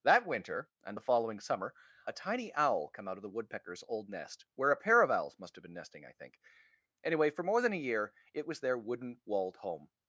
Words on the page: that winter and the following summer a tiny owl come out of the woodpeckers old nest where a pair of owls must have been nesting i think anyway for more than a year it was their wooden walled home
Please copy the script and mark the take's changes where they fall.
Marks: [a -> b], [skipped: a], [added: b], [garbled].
that winter and the following summer a tiny owl come out of the woodpeckers old nest where a pair of owls must have been nesting i think anyway for more than a year it was their wooden walled home